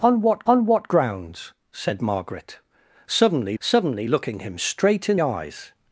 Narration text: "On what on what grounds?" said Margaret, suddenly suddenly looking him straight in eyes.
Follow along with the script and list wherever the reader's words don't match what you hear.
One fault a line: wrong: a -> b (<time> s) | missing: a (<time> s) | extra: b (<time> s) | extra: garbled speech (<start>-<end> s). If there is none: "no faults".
no faults